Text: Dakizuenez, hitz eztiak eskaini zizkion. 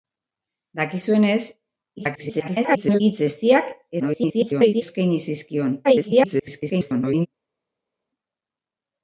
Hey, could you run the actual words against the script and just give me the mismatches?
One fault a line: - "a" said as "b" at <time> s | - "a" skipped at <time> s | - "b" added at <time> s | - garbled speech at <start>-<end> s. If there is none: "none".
- garbled speech at 2.0-3.0 s
- garbled speech at 4.0-4.8 s
- garbled speech at 5.8-7.3 s